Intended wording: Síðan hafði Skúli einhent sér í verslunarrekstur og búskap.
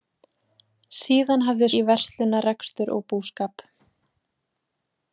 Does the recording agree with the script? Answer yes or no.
no